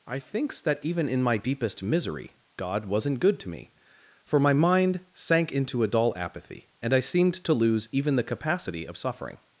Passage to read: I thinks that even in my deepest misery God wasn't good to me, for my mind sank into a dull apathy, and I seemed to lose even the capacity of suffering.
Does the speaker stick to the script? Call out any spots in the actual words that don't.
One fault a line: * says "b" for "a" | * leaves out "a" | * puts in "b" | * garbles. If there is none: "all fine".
all fine